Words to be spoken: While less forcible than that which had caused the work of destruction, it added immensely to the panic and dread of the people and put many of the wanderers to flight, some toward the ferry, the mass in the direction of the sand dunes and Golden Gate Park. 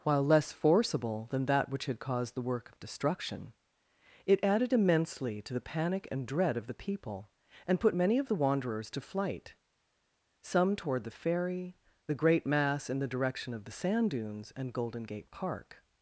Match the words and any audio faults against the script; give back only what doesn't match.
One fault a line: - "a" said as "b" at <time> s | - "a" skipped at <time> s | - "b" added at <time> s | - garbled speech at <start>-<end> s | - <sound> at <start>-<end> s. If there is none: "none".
- "great" added at 12.1 s